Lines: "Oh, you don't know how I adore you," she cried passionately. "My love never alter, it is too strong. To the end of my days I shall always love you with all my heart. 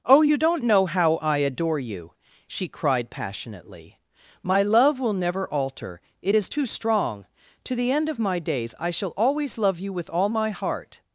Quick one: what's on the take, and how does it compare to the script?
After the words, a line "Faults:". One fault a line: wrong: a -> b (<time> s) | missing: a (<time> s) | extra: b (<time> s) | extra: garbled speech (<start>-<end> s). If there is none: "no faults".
"Oh, you don't know how I adore you," she cried passionately. "My love will never alter, it is too strong. To the end of my days I shall always love you with all my heart.
Faults:
extra: will (5.0 s)